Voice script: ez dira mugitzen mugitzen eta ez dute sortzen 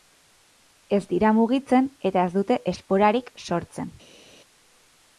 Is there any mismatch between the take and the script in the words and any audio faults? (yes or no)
yes